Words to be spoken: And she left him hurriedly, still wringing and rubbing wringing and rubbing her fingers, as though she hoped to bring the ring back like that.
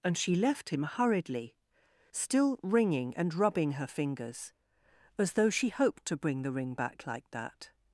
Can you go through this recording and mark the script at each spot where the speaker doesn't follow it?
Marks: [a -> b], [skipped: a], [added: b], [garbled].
And she left him hurriedly, still wringing and rubbing [skipped: wringing and rubbing] her fingers, as though she hoped to bring the ring back like that.